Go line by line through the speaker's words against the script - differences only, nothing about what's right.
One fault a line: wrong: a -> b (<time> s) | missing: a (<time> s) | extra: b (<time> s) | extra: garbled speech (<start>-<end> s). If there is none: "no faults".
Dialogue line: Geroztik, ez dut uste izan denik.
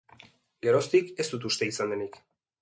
no faults